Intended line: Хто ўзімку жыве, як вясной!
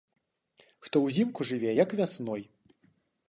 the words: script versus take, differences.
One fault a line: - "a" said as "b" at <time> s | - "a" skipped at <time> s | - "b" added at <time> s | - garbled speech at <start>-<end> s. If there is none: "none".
none